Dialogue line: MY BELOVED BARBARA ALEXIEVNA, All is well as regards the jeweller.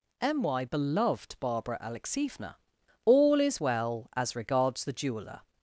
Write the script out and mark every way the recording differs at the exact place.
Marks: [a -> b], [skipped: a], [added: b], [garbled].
MY BELOVED BARBARA ALEXIEVNA, All is well as regards the jeweller.